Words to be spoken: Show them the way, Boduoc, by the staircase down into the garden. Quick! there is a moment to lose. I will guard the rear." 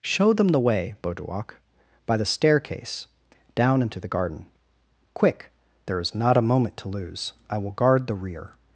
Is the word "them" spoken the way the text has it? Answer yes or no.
yes